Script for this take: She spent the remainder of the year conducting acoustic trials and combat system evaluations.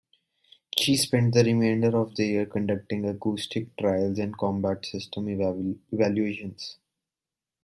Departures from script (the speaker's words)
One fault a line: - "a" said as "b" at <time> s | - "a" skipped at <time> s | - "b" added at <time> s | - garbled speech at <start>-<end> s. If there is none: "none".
none